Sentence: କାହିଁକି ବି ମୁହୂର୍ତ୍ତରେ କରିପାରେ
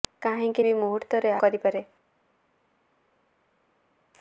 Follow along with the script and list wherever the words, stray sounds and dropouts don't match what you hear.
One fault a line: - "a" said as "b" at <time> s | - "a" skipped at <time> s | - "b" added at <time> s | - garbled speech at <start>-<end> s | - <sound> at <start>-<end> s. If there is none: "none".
none